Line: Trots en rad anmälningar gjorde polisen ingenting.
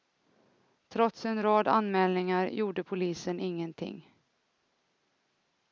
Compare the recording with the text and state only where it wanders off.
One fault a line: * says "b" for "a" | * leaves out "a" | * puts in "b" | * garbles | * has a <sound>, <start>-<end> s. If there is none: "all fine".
all fine